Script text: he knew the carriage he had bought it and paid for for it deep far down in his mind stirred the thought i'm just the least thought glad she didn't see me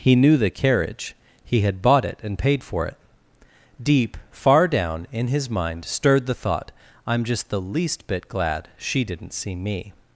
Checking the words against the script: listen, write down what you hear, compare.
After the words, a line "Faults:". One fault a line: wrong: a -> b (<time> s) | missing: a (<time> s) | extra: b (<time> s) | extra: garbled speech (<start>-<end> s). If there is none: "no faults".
he knew the carriage he had bought it and paid for it deep far down in his mind stirred the thought i'm just the least bit glad she didn't see me
Faults:
missing: for (2.9 s)
wrong: thought -> bit (8.1 s)